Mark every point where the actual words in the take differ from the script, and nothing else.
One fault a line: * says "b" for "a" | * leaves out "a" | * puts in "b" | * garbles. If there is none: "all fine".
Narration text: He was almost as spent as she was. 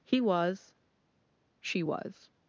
* leaves out "almost as spent as"